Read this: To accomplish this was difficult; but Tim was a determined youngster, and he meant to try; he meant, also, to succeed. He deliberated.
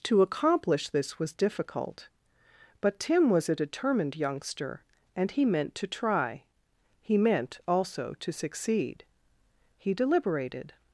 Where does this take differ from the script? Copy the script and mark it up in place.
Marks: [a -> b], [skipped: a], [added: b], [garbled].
To accomplish this was difficult; but Tim was a determined youngster, and he meant to try; he meant, also, to succeed. He deliberated.